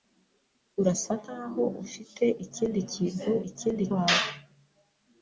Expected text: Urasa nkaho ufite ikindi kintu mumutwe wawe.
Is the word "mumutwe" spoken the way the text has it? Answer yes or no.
no